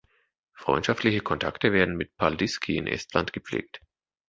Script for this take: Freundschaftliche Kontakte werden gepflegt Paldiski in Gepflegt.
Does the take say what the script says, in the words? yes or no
no